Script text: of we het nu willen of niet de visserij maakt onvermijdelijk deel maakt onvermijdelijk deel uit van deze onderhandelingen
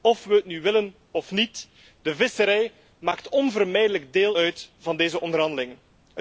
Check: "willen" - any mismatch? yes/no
no